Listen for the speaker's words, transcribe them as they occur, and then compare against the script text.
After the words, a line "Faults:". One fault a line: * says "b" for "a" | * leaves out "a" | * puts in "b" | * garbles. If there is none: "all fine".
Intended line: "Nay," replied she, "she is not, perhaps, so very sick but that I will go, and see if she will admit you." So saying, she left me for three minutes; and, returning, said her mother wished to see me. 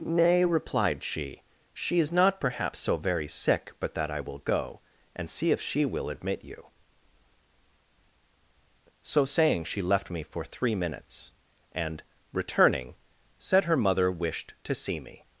"Nay," replied she, "she is not, perhaps, so very sick but that I will go, and see if she will admit you." So saying, she left me for three minutes; and, returning, said her mother wished to see me.
Faults:
all fine